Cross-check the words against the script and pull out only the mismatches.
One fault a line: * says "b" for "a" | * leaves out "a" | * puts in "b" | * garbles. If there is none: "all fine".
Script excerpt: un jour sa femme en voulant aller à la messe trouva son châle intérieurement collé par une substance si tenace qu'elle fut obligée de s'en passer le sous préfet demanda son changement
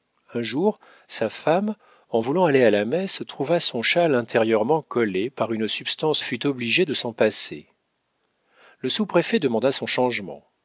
* leaves out "si tenace qu'elle"